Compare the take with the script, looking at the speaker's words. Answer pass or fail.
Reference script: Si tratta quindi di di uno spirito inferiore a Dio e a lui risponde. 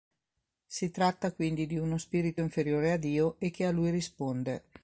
fail